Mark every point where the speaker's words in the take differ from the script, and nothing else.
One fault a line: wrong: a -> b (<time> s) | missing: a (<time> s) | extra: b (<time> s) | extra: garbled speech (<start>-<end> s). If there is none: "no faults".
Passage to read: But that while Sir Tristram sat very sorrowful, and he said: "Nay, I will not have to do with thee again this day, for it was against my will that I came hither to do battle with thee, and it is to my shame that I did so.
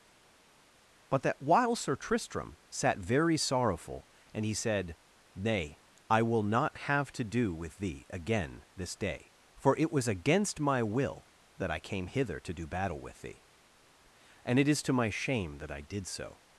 no faults